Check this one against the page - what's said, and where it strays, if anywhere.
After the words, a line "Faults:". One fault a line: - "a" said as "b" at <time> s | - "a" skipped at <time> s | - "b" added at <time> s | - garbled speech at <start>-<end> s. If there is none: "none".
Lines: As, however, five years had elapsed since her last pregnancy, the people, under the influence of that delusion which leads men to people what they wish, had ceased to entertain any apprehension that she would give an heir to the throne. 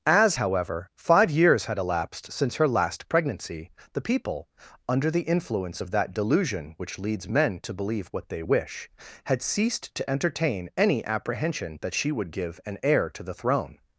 As, however, five years had elapsed since her last pregnancy, the people, under the influence of that delusion which leads men to believe what they wish, had ceased to entertain any apprehension that she would give an heir to the throne.
Faults:
- "people" said as "believe" at 7.7 s